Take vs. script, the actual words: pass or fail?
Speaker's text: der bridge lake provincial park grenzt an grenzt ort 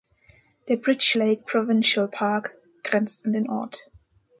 fail